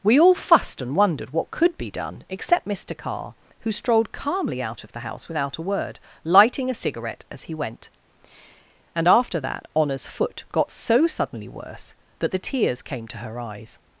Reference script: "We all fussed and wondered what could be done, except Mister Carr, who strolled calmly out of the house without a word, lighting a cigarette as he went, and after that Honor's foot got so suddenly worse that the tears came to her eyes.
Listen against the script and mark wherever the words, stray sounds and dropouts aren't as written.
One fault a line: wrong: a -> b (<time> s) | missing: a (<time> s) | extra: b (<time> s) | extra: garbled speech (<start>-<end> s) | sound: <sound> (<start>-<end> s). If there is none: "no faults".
no faults